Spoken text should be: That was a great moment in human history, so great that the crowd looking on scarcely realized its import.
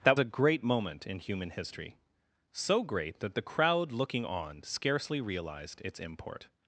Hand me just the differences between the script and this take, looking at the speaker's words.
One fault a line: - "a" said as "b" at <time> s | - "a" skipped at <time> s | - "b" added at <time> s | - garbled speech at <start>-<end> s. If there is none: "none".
- "was" skipped at 0.2 s